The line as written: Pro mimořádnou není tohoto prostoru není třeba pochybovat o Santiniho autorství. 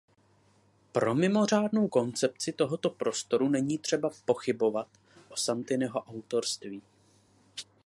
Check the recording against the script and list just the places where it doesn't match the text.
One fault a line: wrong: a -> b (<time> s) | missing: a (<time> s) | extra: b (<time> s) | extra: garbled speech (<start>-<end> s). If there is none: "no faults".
wrong: není -> koncepci (1.8 s)